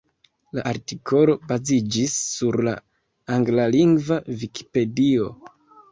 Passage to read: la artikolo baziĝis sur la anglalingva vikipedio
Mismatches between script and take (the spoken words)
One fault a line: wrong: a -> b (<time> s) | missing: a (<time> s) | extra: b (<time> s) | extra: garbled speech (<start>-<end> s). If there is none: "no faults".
no faults